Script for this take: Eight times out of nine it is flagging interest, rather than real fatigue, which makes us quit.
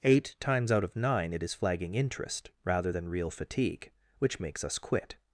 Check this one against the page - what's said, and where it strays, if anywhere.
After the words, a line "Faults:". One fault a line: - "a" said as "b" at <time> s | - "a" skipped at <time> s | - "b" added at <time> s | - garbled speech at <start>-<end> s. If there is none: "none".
Eight times out of nine it is flagging interest, rather than real fatigue, which makes us quit.
Faults:
none